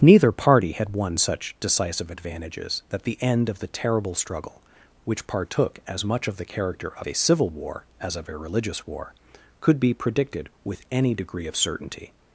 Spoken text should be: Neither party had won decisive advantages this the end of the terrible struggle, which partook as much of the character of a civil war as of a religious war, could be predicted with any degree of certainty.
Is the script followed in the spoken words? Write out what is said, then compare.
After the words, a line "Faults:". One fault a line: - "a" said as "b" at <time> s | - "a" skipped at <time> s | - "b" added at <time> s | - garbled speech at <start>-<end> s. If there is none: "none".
Neither party had won such decisive advantages that the end of the terrible struggle, which partook as much of the character of a civil war as of a religious war, could be predicted with any degree of certainty.
Faults:
- "such" added at 1.2 s
- "this" said as "that" at 2.9 s